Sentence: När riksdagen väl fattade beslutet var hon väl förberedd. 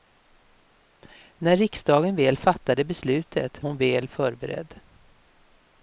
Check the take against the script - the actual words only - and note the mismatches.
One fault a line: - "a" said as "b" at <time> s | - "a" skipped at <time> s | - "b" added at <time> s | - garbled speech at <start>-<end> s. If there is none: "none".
- "var" skipped at 3.6 s